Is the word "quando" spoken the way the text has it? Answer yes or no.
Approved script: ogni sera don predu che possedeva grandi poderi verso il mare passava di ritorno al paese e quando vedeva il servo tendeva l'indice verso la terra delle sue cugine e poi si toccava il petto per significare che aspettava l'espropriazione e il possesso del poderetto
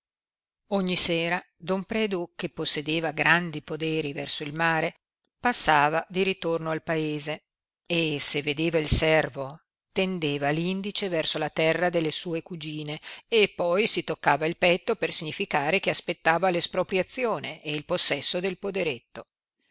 no